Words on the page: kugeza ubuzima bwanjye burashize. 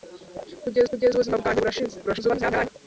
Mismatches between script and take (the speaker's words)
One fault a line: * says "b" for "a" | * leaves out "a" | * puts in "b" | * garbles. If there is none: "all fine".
* puts in "kugeza"
* garbles